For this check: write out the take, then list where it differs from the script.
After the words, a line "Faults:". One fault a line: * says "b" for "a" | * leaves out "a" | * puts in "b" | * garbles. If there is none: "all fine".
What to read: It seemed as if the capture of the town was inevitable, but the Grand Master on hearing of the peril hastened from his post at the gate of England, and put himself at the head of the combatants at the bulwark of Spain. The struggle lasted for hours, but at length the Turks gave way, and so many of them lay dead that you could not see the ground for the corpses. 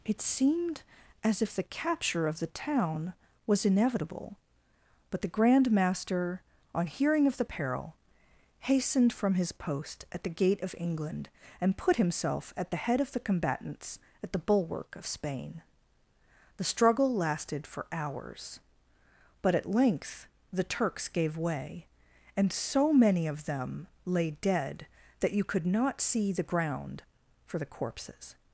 It seemed as if the capture of the town was inevitable, but the Grand Master on hearing of the peril hastened from his post at the gate of England, and put himself at the head of the combatants at the bulwark of Spain. The struggle lasted for hours, but at length the Turks gave way, and so many of them lay dead that you could not see the ground for the corpses.
Faults:
all fine